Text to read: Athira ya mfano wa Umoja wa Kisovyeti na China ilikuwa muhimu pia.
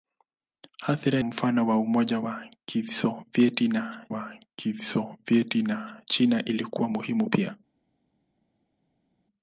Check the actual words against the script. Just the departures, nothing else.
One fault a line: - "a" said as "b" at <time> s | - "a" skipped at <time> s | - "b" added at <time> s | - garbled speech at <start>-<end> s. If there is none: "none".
- "ya" skipped at 1.2 s
- "wa Kisovyeti na" added at 4.1 s